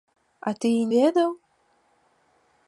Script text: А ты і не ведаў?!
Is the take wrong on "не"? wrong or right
wrong